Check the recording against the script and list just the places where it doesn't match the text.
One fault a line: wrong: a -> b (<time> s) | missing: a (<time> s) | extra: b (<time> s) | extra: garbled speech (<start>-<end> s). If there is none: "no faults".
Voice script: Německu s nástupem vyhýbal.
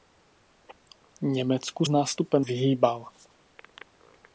no faults